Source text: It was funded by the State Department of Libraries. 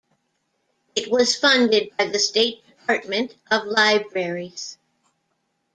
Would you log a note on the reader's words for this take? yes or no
no